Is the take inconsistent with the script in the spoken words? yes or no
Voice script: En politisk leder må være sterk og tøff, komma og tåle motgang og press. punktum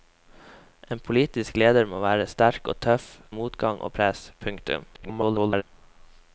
yes